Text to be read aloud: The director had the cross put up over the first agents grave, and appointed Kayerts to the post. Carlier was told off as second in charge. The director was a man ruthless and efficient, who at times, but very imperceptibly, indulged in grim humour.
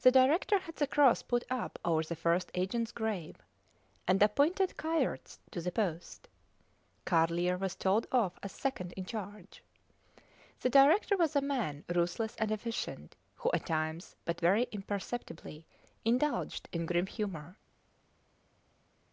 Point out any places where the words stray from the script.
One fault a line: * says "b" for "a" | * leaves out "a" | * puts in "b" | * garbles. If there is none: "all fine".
all fine